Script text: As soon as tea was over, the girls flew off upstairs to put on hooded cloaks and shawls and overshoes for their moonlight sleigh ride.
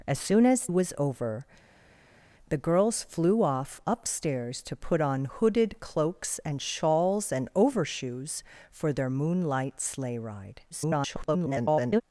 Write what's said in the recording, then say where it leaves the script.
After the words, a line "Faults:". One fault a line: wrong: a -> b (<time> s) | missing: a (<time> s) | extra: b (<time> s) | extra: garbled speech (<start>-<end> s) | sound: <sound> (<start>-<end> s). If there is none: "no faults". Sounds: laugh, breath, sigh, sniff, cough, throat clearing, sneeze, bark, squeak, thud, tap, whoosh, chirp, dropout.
As soon as was over, the girls flew off upstairs to put on hooded cloaks and shawls and overshoes for their moonlight sleigh ride. [garbled]
Faults:
missing: tea (0.7 s)
extra: garbled speech (10.7-12.0 s)